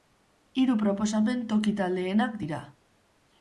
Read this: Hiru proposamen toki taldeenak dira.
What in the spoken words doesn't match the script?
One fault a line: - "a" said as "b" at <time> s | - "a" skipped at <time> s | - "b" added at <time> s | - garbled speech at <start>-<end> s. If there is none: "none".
none